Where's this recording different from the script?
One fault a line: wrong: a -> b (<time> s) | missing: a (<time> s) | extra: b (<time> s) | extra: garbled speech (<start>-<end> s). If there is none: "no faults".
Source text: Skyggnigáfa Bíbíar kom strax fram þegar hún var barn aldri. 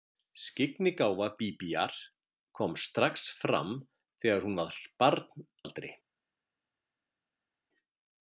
no faults